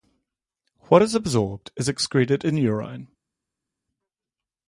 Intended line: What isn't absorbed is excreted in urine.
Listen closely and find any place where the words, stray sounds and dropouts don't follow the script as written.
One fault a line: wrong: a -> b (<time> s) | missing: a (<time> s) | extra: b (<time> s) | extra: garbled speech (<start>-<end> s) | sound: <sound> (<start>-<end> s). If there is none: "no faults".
wrong: isn't -> is (1.0 s)